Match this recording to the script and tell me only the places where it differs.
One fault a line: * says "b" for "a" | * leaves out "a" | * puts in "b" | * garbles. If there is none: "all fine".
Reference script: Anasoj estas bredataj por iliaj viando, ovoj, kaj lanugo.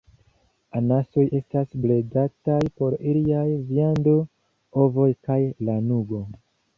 all fine